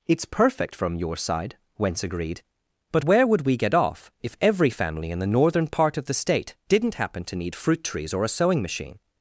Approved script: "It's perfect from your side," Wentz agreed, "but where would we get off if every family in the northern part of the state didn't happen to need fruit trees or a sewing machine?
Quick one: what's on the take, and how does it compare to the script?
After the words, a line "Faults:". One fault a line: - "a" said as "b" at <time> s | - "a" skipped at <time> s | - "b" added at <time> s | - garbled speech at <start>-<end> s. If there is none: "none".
"It's perfect from your side," Wentz agreed, "but where would we get off if every family in the northern part of the state didn't happen to need fruit trees or a sewing machine?
Faults:
none